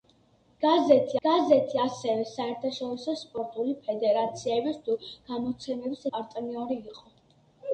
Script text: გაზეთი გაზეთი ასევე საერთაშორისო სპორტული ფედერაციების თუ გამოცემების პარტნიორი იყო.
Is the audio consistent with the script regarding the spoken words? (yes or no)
yes